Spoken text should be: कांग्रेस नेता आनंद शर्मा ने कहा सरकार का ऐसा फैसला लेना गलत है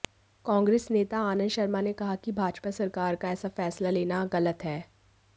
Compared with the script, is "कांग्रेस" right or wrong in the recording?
right